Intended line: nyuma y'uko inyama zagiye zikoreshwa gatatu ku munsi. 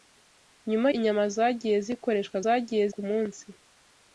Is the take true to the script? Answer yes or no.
no